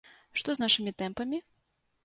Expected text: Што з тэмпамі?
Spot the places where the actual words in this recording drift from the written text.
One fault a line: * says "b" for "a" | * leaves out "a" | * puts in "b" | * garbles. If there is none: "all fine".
* puts in "нашымі"